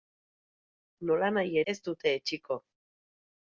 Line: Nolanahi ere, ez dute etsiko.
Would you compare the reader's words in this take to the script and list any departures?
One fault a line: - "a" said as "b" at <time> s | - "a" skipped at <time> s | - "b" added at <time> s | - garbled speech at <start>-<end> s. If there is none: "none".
- "ere" skipped at 1.6 s